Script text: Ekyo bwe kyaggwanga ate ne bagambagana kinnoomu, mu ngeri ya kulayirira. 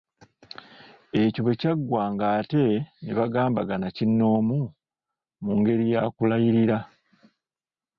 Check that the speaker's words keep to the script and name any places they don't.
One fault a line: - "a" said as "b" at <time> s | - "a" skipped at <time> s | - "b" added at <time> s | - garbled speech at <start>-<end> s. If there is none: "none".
none